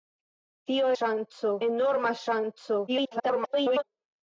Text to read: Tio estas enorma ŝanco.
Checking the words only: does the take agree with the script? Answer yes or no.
no